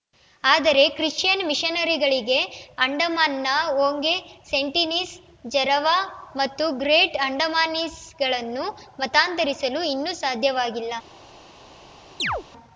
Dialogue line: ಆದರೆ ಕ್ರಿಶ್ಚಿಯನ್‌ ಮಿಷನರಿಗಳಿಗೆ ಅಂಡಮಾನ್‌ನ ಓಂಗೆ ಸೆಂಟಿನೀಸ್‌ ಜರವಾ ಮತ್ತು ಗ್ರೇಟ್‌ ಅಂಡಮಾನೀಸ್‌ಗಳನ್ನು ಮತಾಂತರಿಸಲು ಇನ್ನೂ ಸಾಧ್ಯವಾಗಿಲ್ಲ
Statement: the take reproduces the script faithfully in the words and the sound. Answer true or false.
false